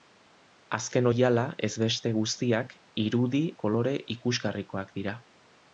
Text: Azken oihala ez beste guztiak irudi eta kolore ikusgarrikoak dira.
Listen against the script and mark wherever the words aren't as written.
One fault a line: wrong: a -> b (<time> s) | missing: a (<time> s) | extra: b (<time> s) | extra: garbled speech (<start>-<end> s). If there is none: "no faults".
missing: eta (3.4 s)